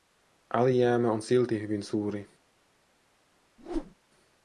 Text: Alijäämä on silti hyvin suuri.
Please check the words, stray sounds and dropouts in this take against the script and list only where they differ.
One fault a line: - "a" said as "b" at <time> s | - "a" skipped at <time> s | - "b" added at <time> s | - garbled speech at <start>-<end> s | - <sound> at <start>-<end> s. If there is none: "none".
- whoosh at 3.6-3.9 s